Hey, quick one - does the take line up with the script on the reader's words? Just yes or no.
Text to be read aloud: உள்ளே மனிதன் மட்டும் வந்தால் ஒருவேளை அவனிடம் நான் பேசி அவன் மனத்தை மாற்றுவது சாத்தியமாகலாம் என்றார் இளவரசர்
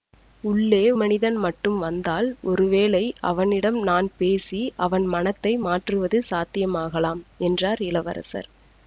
yes